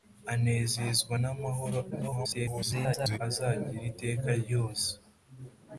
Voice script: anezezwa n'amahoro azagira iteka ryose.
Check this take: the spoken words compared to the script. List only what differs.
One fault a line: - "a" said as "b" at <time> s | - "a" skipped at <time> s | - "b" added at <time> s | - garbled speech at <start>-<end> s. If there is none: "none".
- garbled speech at 1.9-3.2 s